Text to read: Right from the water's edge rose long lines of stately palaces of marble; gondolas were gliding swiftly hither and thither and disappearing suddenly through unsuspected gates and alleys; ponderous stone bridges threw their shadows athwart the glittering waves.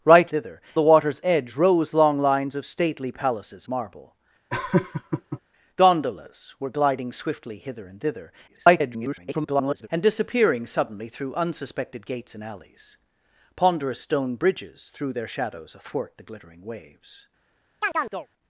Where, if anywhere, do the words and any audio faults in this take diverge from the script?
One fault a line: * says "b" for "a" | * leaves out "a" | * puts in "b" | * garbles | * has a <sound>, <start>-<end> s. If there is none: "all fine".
* says "thither" for "from"
* leaves out "of"
* has a laugh, 4.5-5.4 s
* garbles
* has a chirp, 17.8-18.3 s